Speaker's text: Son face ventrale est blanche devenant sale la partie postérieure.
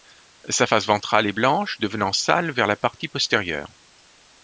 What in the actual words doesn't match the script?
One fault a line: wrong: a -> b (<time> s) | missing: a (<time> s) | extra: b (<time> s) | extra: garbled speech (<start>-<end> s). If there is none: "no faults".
wrong: Son -> Sa (0.5 s)
extra: vers (2.5 s)